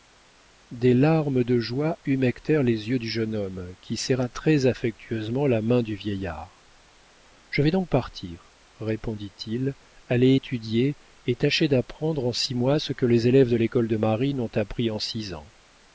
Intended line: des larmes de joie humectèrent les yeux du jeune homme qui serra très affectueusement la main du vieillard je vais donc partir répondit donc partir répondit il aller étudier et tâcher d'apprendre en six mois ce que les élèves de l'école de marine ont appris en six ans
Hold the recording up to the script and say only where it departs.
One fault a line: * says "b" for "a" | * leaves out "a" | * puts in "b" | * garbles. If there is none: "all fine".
* leaves out "donc partir répondit"